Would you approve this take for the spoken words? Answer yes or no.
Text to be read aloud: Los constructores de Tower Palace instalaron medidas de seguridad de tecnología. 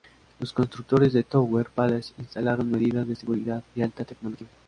no